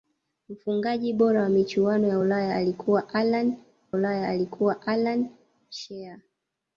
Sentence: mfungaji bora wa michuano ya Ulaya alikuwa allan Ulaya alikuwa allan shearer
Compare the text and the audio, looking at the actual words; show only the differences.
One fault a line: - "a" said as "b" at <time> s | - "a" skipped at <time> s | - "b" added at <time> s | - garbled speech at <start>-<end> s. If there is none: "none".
none